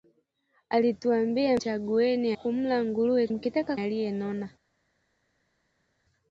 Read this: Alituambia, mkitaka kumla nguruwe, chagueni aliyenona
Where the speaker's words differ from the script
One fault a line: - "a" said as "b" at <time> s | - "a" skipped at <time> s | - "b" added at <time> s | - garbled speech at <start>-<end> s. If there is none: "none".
- "mkitaka" said as "chagueni" at 1.6 s
- "chagueni" said as "mkitaka" at 3.3 s